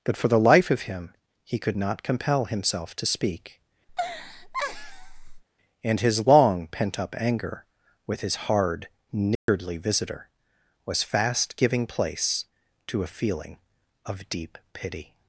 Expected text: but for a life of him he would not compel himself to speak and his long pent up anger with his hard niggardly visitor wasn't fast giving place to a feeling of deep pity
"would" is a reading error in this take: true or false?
true